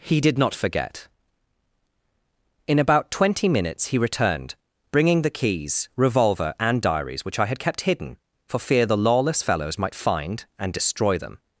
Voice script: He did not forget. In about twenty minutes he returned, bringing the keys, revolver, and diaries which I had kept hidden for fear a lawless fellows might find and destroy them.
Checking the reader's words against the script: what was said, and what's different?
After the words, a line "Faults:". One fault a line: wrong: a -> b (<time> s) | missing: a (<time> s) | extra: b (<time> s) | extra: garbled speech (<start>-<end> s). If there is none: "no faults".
He did not forget. In about twenty minutes he returned, bringing the keys, revolver, and diaries which I had kept hidden for fear the lawless fellows might find and destroy them.
Faults:
wrong: a -> the (8.8 s)